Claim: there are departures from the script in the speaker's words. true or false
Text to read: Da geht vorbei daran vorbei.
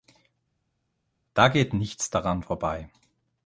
true